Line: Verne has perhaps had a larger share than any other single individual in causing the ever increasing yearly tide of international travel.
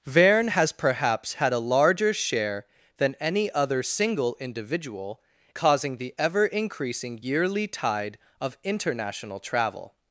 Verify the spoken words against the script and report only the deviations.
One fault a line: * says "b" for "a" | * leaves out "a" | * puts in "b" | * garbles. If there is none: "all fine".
* leaves out "in"